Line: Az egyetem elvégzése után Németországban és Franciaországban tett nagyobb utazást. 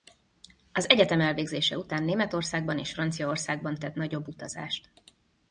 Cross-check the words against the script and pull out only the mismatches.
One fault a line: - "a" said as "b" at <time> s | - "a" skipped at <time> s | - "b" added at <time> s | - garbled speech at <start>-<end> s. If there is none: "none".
none